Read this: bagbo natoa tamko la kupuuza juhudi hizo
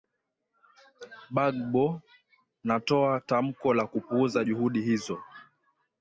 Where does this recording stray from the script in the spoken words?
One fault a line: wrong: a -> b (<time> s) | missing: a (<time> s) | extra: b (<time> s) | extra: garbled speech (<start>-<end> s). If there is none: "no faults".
no faults